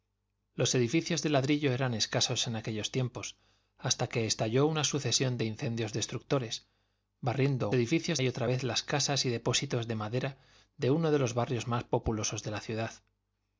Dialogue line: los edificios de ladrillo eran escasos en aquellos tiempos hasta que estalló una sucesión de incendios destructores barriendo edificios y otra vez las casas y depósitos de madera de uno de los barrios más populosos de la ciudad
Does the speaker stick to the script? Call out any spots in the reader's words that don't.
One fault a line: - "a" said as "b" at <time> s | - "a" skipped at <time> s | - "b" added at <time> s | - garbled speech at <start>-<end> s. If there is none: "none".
none